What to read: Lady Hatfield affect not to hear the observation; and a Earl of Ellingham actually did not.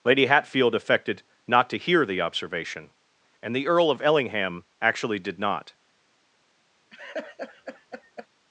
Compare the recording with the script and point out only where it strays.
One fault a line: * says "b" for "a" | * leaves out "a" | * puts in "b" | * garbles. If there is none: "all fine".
* says "affected" for "affect"
* says "the" for "a"